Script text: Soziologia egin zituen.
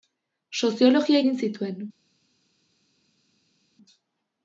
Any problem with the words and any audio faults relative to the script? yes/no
no